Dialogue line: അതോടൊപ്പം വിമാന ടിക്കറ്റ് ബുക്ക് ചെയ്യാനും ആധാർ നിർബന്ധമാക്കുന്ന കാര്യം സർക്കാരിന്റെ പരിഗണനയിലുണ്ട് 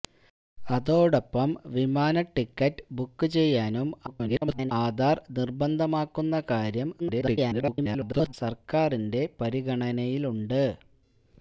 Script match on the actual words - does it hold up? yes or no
no